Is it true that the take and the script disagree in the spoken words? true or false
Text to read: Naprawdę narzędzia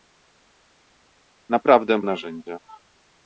false